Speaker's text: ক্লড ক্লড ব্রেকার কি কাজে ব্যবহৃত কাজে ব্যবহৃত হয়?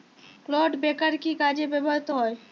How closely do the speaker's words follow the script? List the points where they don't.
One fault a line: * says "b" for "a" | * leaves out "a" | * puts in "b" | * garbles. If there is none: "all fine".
* leaves out "ক্লড"
* leaves out "কাজে ব্যবহৃত"